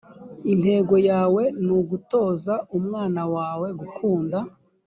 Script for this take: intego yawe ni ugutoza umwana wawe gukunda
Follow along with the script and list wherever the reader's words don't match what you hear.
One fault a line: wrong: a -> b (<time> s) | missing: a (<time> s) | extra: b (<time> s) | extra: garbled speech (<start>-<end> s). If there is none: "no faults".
no faults